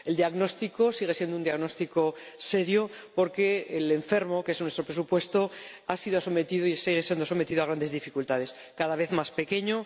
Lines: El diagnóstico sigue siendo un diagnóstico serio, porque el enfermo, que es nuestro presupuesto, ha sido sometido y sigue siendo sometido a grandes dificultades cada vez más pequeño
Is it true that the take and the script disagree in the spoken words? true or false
false